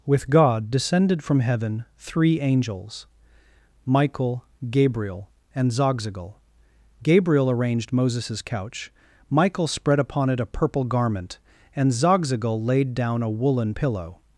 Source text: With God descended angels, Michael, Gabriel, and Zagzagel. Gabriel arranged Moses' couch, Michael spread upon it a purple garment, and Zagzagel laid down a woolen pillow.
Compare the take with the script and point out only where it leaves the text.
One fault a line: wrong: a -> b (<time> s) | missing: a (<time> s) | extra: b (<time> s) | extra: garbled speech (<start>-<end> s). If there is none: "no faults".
extra: from heaven three (1.2 s)